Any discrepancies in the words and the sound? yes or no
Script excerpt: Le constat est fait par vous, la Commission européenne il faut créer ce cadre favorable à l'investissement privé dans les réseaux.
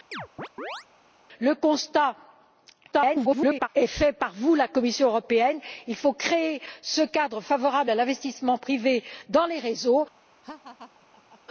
yes